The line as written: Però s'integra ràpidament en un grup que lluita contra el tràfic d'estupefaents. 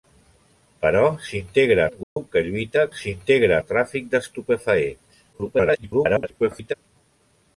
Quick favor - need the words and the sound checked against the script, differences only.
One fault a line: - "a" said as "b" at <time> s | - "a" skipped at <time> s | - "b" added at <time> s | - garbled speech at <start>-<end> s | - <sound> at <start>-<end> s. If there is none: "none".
- "ràpidament en" skipped at 1.9 s
- dropout at 2.0-2.2 s
- "contra" said as "s'integra" at 3.0 s
- garbled speech at 5.3-6.7 s